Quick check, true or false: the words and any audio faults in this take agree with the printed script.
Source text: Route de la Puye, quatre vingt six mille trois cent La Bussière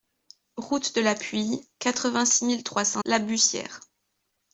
true